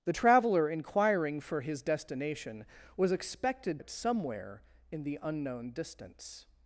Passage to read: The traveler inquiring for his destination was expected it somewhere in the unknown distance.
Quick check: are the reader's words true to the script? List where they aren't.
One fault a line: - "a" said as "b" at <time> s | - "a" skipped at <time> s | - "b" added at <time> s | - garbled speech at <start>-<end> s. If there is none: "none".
none